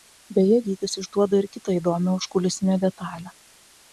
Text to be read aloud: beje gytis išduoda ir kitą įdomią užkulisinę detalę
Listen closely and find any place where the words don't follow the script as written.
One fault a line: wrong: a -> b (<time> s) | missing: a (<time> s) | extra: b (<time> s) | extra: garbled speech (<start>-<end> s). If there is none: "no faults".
no faults